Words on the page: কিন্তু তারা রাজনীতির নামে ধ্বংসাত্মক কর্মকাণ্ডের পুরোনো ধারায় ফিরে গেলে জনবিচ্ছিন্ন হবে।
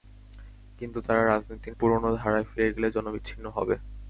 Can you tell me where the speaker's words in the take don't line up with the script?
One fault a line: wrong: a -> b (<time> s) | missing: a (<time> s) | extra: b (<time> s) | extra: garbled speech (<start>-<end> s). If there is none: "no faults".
missing: নামে ধ্বংসাত্মক কর্মকাণ্ডের (1.8 s)